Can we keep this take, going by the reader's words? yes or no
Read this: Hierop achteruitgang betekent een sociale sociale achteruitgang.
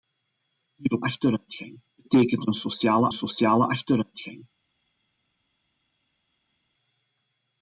yes